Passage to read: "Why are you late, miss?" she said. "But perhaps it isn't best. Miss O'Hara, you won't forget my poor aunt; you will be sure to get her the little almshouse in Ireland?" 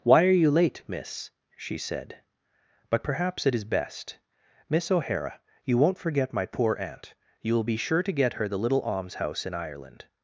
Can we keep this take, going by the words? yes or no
no